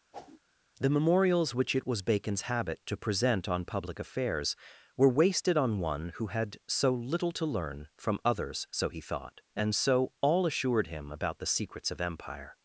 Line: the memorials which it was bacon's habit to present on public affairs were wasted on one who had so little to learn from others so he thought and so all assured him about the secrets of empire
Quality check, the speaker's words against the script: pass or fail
pass